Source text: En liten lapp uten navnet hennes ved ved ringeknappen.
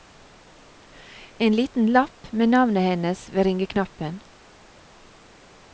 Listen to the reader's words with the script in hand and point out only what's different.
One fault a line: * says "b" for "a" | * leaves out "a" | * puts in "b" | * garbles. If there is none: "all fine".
* says "med" for "uten"
* leaves out "ved"